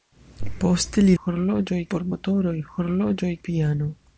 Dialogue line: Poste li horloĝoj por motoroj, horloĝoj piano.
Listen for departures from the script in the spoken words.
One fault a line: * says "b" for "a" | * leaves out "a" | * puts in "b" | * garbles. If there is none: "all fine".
all fine